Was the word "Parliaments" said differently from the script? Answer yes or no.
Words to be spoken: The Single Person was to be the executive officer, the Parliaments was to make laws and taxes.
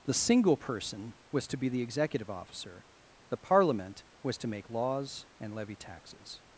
yes